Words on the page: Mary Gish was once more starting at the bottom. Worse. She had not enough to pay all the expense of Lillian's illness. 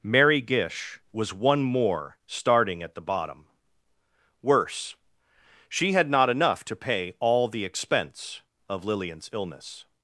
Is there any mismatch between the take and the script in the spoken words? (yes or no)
yes